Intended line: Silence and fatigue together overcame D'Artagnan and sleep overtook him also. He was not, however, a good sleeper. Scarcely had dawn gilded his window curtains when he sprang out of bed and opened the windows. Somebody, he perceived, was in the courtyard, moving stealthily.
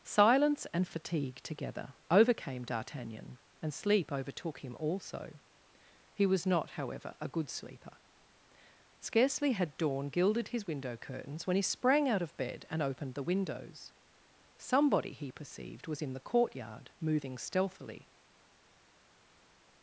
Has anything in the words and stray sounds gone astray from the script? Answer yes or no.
no